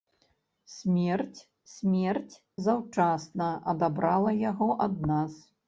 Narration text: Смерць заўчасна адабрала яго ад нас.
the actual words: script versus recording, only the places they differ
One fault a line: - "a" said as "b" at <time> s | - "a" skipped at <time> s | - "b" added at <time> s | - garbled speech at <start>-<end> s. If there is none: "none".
- "смерць" added at 1.7 s